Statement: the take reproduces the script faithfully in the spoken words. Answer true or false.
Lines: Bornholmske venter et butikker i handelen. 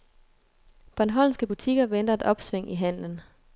false